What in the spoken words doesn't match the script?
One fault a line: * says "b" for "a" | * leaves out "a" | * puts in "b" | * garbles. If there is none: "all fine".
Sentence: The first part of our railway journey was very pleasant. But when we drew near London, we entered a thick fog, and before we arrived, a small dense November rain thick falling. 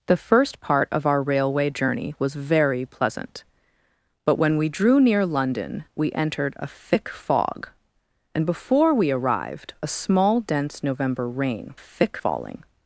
all fine